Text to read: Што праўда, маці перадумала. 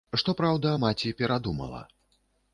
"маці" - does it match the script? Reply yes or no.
yes